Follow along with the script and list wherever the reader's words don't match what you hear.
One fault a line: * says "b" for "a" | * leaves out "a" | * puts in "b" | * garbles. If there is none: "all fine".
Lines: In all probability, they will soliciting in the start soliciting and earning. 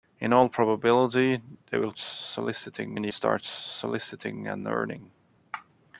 all fine